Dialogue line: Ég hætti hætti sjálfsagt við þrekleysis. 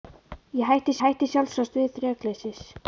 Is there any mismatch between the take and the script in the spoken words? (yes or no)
no